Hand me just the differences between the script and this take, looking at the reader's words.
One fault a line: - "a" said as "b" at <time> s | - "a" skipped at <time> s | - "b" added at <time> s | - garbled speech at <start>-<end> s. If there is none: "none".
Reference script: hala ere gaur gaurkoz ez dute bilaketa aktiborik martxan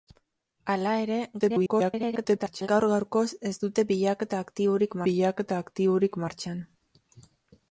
- garbled speech at 1.4-2.7 s
- "bilaketa aktiborik" added at 5.1 s